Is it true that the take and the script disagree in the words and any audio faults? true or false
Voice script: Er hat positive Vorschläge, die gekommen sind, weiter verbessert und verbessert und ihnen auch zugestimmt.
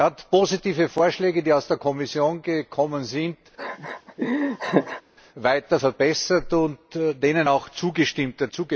true